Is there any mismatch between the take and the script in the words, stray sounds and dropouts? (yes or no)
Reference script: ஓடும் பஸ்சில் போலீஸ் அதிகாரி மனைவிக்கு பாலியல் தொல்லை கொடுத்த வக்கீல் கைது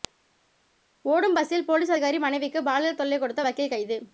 no